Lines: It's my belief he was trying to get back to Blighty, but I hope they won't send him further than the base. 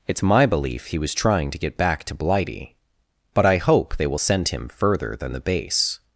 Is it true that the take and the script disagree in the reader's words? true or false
true